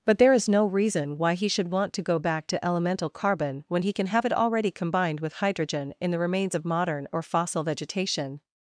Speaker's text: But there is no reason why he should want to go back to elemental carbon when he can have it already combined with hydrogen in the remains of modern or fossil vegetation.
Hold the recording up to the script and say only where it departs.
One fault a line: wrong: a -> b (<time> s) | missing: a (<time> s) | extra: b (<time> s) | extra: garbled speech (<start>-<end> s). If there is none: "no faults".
no faults